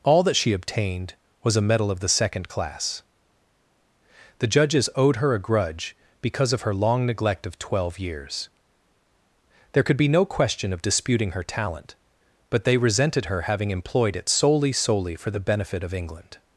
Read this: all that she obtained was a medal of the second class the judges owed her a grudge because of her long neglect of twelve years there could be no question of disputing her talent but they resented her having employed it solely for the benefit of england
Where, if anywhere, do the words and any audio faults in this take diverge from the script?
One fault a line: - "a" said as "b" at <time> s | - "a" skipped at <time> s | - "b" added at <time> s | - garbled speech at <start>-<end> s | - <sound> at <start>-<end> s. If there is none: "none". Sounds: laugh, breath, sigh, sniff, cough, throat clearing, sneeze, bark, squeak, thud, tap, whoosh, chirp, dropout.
- "solely" added at 14.7 s